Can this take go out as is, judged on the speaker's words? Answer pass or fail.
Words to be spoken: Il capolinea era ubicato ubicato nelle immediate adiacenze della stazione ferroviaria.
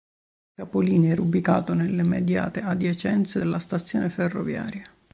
fail